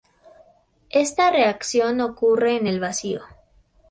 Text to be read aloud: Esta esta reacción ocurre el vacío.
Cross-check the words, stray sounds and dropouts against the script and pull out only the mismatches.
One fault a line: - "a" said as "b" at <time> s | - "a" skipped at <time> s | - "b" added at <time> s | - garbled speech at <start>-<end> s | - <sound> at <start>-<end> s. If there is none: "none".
- "esta" skipped at 1.3 s
- "en" added at 2.6 s